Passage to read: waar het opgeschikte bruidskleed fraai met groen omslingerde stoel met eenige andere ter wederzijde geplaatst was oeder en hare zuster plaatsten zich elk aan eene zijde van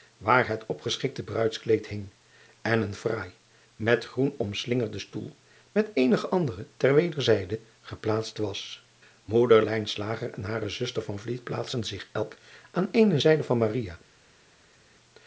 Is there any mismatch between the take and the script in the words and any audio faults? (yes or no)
yes